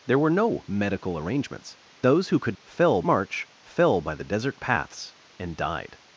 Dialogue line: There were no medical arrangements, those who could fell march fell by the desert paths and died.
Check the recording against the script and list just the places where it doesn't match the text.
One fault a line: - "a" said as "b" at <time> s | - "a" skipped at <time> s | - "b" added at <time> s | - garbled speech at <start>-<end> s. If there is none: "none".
none